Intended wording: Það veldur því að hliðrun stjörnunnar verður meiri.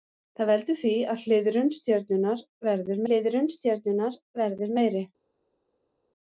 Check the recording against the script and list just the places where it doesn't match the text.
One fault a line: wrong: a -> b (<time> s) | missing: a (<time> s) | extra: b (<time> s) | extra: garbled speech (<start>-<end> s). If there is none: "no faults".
extra: hliðrun stjörnunnar verður (3.1 s)